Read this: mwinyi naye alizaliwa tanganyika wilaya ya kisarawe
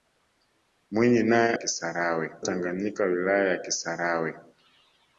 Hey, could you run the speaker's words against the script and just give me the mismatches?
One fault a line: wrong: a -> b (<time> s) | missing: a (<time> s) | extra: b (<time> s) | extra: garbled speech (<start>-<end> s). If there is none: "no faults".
wrong: alizaliwa -> kisarawe (1.5 s)